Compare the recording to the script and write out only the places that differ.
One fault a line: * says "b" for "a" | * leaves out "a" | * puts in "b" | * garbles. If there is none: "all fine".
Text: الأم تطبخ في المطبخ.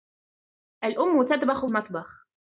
* leaves out "في"